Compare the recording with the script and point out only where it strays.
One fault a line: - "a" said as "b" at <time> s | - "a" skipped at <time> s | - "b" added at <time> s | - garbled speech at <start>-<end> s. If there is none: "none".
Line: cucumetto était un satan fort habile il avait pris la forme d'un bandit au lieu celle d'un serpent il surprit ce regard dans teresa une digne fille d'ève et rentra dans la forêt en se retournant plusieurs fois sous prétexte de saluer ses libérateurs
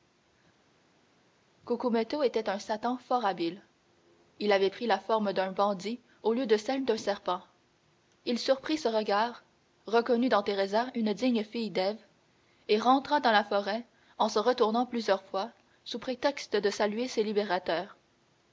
- "de" added at 6.5 s
- "reconnut" added at 9.9 s